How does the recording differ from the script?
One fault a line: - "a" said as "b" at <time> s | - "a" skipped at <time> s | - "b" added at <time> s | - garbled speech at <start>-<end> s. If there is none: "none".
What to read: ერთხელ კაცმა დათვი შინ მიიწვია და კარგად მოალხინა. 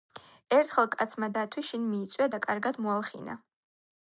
none